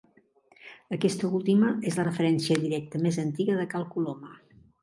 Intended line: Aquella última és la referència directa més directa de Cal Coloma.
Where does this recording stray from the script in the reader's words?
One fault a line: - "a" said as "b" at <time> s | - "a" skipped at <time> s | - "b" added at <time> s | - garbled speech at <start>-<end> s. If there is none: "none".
- "Aquella" said as "Aquesta" at 1.0 s
- "directa" said as "antiga" at 3.3 s